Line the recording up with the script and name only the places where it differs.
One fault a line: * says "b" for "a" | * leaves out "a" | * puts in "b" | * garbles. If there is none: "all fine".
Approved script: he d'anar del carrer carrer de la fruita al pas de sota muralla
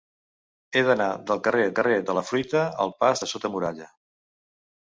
all fine